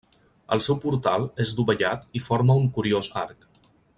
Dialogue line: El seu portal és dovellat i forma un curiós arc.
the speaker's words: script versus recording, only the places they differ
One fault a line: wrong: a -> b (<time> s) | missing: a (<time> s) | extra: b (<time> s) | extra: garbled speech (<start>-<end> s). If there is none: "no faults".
no faults